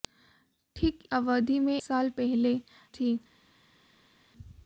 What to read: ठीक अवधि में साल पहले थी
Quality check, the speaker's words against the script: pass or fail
pass